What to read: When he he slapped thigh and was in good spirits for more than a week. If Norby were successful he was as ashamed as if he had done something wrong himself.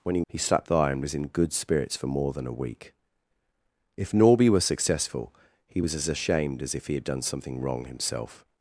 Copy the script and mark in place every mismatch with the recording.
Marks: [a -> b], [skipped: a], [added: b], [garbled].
When he he slapped thigh and was in good spirits for more than a week. If Norby were successful he was as ashamed as if he had done something wrong himself.